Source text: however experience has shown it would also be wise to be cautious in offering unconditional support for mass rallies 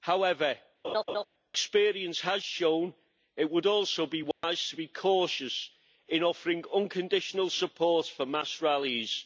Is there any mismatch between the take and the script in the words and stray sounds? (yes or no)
yes